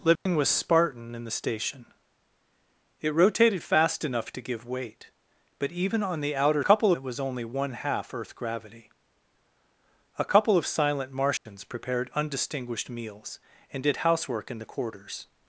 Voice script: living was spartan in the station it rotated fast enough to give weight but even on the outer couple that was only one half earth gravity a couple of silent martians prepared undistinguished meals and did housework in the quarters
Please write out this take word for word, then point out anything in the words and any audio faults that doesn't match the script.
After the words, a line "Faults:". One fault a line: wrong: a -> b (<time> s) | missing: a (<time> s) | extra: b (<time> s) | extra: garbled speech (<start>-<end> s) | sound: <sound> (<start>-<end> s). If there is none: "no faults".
living was spartan in the station it rotated fast enough to give weight but even on the outer couple that was only one half earth gravity a couple of silent martians prepared undistinguished meals and did housework in the quarters
Faults:
sound: dropout (0.2-0.3 s)
sound: dropout (11.4-11.5 s)